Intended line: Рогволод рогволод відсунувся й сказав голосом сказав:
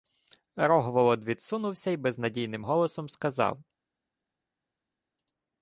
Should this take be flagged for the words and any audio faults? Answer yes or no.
yes